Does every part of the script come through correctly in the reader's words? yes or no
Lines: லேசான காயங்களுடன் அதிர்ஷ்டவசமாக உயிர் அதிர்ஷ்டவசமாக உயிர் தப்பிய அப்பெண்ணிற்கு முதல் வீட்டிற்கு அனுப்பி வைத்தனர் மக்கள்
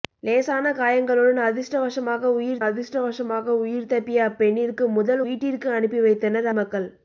yes